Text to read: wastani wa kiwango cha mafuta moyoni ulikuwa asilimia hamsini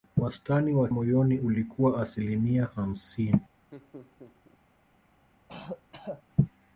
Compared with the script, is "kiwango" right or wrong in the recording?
wrong